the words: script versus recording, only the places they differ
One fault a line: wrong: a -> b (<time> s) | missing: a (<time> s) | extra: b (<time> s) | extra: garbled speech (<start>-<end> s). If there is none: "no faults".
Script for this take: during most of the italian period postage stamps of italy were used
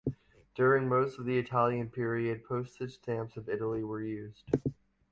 no faults